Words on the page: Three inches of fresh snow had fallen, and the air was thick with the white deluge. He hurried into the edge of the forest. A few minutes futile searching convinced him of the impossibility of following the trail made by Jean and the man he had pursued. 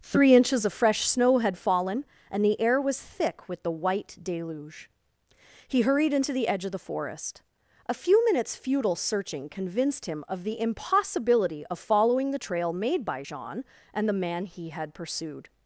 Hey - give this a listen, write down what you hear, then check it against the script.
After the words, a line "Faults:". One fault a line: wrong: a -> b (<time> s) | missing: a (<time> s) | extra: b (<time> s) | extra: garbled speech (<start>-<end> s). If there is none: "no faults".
Three inches of fresh snow had fallen, and the air was thick with the white deluge. He hurried into the edge of the forest. A few minutes futile searching convinced him of the impossibility of following the trail made by Jean and the man he had pursued.
Faults:
no faults